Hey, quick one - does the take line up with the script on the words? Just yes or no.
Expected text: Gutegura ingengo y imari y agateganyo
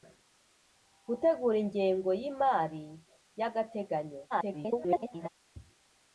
no